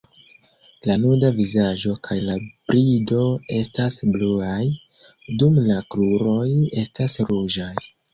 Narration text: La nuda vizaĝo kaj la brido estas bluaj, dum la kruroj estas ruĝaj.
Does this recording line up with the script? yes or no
yes